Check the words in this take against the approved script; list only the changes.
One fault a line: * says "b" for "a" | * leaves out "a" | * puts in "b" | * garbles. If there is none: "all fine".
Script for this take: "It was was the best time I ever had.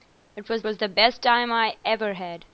all fine